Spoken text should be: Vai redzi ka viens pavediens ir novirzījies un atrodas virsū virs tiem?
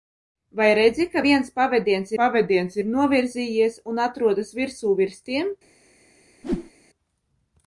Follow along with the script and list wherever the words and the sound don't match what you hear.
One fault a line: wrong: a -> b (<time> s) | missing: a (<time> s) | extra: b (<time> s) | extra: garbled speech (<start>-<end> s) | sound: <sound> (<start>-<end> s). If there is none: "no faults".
extra: pavediens (2.2 s)
sound: whoosh (6.4-6.7 s)